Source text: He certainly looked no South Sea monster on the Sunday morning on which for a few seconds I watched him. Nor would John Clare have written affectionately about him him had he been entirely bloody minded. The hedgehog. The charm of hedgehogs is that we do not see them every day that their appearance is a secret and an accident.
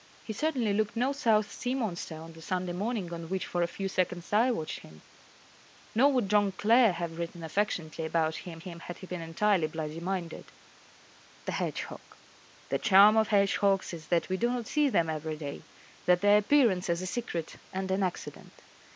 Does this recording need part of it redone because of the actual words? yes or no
no